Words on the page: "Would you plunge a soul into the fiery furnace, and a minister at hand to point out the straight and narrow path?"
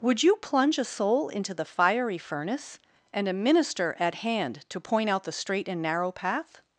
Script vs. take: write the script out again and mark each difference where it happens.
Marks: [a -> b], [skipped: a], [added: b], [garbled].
"Would you plunge a soul into the fiery furnace, and a minister at hand to point out the straight and narrow path?"